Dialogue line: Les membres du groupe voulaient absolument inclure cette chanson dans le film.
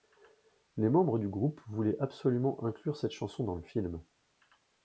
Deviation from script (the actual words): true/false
false